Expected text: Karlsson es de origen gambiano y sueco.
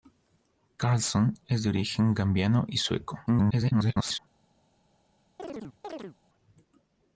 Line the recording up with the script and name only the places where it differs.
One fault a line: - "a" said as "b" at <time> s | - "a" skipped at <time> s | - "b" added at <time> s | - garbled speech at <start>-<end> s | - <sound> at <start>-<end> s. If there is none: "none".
- garbled speech at 3.3-4.2 s
- chirp at 5.4-6.2 s